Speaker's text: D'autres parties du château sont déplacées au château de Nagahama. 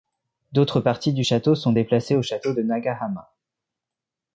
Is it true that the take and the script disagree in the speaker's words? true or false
false